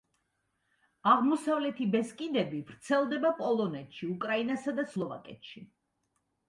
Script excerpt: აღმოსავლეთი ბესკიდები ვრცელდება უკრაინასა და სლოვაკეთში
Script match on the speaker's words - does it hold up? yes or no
no